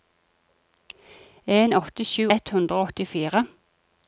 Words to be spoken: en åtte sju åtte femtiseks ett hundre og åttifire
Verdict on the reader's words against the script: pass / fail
fail